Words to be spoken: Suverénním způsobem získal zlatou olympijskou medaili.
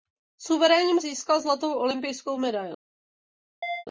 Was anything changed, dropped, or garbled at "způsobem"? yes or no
yes